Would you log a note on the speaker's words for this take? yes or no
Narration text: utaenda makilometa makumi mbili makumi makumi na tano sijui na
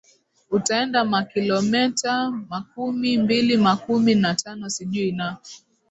yes